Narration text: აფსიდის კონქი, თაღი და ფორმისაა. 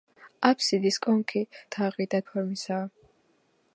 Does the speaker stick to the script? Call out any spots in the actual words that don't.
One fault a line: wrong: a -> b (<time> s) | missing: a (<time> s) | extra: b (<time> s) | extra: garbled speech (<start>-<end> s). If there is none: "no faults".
no faults